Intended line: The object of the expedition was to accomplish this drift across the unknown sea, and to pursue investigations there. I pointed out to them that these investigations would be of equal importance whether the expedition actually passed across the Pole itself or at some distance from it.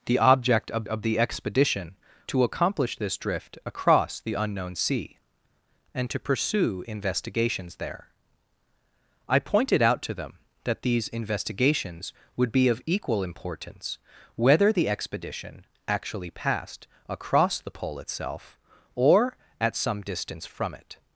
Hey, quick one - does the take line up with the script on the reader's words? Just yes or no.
no